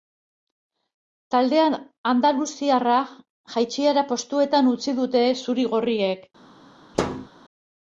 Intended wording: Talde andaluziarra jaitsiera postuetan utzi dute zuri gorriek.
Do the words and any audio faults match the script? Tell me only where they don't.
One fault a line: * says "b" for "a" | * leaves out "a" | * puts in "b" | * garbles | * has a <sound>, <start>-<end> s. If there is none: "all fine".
* has a thud, 6.9-7.3 s